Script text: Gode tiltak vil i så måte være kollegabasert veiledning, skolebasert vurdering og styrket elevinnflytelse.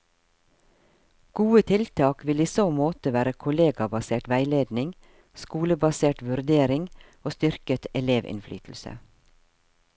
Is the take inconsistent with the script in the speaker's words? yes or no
no